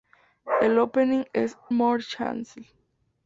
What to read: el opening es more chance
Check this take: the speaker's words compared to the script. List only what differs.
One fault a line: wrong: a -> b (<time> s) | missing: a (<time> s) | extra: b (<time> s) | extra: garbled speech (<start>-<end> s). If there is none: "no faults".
no faults